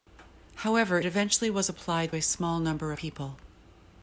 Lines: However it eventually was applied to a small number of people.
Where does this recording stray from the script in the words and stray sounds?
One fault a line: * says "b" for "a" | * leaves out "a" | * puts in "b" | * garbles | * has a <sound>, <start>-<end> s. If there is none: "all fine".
* leaves out "it"
* leaves out "to"
* leaves out "of"